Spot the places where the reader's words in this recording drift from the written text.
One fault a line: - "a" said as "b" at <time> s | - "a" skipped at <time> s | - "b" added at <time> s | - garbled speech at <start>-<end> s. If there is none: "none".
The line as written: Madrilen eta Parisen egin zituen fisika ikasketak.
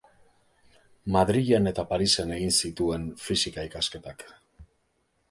none